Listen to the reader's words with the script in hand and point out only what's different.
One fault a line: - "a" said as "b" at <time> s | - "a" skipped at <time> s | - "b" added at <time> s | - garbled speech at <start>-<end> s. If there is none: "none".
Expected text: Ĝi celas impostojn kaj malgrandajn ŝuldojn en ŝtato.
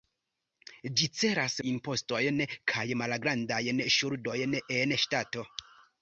none